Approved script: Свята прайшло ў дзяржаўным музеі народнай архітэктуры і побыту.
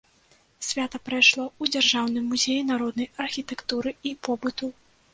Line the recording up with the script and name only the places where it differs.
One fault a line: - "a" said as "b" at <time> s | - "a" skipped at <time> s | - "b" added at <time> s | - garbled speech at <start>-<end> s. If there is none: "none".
none